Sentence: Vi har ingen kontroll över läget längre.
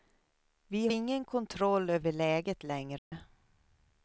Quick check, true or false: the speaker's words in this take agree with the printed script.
false